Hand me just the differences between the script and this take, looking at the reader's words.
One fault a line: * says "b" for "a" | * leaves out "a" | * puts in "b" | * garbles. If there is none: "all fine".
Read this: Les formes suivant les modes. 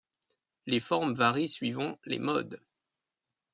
* puts in "varient"